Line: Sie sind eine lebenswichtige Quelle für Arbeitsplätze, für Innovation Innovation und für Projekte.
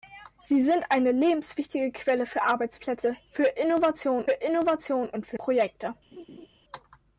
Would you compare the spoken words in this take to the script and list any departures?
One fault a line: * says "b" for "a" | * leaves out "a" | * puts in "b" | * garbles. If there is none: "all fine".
all fine